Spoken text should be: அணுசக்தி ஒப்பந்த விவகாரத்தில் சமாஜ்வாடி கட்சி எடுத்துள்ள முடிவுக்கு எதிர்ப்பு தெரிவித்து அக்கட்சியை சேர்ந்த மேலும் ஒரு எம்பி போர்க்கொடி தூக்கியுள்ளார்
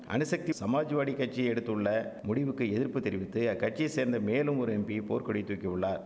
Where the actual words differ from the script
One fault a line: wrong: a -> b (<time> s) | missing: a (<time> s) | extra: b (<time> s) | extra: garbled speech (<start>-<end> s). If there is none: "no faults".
missing: ஒப்பந்த விவகாரத்தில் (0.5 s)